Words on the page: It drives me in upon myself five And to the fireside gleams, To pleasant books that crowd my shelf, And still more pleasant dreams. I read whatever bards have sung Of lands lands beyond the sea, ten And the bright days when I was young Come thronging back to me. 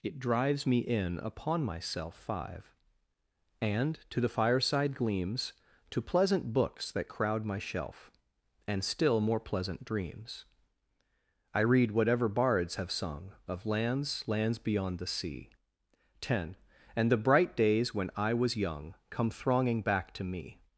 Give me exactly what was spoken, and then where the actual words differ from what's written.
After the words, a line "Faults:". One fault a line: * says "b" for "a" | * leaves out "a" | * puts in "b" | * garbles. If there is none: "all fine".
It drives me in upon myself five And to the fireside gleams, To pleasant books that crowd my shelf, And still more pleasant dreams. I read whatever bards have sung Of lands lands beyond the sea, ten And the bright days when I was young Come thronging back to me.
Faults:
all fine